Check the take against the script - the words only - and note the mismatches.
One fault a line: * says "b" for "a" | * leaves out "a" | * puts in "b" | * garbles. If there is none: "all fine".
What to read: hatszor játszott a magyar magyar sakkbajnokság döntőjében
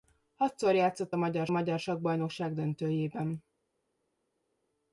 all fine